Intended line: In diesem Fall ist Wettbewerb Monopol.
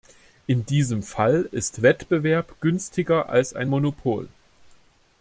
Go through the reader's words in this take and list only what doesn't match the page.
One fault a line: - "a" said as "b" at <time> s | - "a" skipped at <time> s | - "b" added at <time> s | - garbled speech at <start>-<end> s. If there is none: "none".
- "günstiger als ein" added at 2.6 s